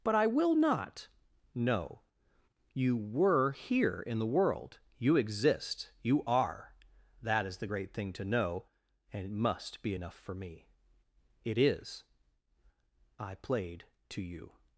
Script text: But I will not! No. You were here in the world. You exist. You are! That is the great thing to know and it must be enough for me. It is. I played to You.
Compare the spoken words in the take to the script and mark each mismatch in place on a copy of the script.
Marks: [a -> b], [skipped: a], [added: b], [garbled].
But I will not! No. You were here in the world. You exist. You are! That is the great thing to know and it must be enough for me. It is. I played to You.